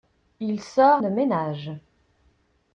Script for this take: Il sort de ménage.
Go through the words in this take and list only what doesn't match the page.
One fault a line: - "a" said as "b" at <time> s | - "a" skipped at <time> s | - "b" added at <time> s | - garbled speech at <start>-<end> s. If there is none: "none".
none